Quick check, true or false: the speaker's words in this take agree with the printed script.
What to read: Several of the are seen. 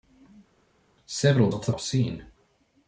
true